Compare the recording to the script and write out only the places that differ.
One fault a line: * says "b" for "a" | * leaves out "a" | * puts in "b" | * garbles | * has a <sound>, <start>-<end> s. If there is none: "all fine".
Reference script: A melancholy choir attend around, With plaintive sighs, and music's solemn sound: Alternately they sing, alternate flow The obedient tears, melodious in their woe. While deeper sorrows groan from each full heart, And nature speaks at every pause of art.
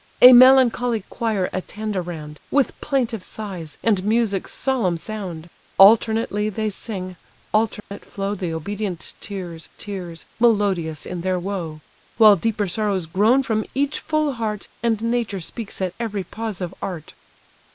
* has a dropout, 7.8-7.9 s
* puts in "tears"